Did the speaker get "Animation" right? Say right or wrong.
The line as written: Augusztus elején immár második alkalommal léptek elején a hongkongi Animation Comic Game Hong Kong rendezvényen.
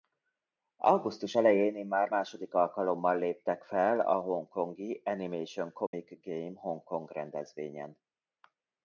right